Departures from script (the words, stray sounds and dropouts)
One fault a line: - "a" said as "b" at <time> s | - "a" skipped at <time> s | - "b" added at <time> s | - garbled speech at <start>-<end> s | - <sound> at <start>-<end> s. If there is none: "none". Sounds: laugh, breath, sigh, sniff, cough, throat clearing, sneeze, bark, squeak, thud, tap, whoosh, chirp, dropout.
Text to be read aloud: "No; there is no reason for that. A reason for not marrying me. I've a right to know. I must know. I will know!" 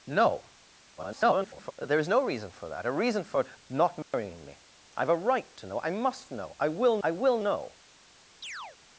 - garbled speech at 1.0-1.7 s
- dropout at 4.0-4.1 s
- "I will" added at 7.0 s
- chirp at 8.4-8.8 s